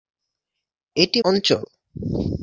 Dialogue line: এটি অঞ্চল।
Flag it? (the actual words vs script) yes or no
no